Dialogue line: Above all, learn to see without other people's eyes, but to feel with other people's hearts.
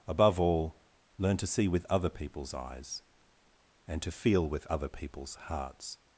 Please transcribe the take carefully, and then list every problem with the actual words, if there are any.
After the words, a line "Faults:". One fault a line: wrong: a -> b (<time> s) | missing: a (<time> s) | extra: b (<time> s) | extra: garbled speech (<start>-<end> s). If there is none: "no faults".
Above all, learn to see with other people's eyes, and to feel with other people's hearts.
Faults:
wrong: without -> with (1.7 s)
wrong: but -> and (3.9 s)